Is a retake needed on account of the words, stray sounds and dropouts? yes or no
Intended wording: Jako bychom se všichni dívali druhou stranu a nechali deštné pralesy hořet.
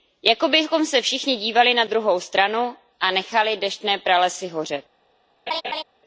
yes